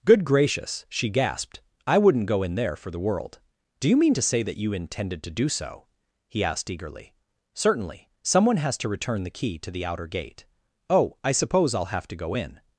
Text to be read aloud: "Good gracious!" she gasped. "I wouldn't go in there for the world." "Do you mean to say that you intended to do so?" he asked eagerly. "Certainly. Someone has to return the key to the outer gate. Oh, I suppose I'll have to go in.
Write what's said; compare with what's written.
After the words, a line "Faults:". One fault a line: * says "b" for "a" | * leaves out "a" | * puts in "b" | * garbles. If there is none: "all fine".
"Good gracious!" she gasped. "I wouldn't go in there for the world." "Do you mean to say that you intended to do so?" he asked eagerly. "Certainly. Someone has to return the key to the outer gate. Oh, I suppose I'll have to go in.
Faults:
all fine